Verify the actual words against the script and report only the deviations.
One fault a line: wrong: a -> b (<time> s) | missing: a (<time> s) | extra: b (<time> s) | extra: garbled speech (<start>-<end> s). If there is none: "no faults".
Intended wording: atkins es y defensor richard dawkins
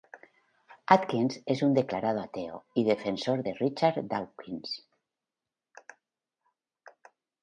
extra: un declarado ateo (1.6 s)
extra: de (3.4 s)